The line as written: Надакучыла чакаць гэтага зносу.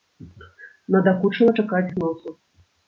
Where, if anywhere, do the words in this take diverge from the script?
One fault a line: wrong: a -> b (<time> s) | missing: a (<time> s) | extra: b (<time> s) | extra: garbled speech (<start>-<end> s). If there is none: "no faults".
missing: гэтага (1.9 s)